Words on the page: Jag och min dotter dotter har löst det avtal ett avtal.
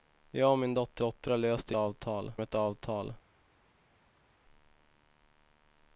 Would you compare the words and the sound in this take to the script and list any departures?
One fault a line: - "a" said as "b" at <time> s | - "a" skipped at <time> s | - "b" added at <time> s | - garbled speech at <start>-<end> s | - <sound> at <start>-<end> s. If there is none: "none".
none